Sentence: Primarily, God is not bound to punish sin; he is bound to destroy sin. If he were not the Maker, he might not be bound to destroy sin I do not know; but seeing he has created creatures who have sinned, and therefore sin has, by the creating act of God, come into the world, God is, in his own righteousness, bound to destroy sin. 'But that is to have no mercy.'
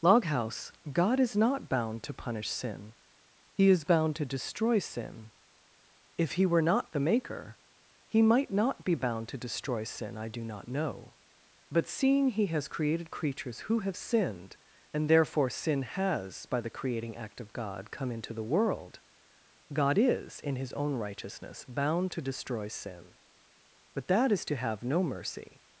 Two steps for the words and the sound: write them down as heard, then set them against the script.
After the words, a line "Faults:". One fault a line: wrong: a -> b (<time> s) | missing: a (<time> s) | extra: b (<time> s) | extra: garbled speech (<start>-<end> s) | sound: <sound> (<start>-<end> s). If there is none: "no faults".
Loghouse, God is not bound to punish sin; he is bound to destroy sin. If he were not the Maker, he might not be bound to destroy sin I do not know; but seeing he has created creatures who have sinned, and therefore sin has, by the creating act of God, come into the world, God is, in his own righteousness, bound to destroy sin. 'But that is to have no mercy.'
Faults:
wrong: Primarily -> Loghouse (0.0 s)